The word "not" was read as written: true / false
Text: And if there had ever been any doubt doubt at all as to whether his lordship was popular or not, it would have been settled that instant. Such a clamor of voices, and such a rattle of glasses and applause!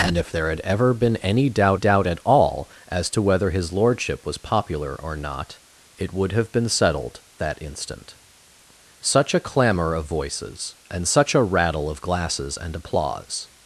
true